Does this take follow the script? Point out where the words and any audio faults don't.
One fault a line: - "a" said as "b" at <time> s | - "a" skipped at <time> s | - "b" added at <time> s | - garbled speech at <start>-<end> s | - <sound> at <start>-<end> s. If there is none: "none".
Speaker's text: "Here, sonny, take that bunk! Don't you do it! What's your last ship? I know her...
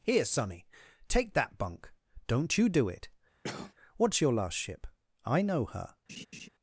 - cough at 3.4-3.7 s
- laugh at 6.1-6.5 s